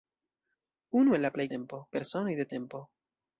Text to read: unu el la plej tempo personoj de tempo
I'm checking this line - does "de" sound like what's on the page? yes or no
yes